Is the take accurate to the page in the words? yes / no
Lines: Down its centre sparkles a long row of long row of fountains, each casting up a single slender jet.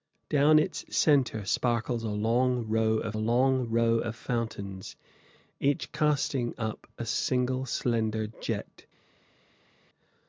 yes